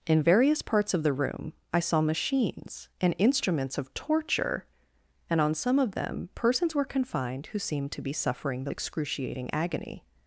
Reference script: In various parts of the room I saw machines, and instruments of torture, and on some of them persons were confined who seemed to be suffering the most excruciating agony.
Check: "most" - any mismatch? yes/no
yes